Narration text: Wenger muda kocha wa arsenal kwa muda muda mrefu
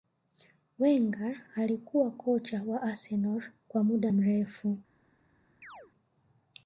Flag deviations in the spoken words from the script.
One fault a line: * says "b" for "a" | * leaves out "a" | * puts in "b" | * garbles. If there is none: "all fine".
* says "alikuwa" for "muda"
* leaves out "muda"